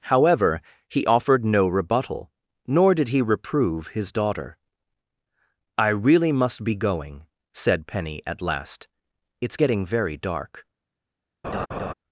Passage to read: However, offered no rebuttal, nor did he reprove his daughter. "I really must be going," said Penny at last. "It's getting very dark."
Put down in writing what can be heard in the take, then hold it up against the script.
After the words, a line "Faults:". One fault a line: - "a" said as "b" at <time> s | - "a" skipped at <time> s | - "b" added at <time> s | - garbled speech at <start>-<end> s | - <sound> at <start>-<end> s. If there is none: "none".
However, he offered no rebuttal, nor did he reprove his daughter. "I really must be going," said Penny at last. "It's getting very dark."
Faults:
- "he" added at 0.9 s
- laugh at 11.4-11.9 s